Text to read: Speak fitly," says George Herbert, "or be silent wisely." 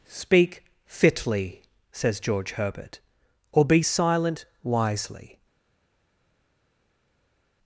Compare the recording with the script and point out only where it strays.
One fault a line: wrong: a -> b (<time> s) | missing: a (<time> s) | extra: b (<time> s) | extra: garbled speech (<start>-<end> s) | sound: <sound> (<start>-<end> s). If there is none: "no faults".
no faults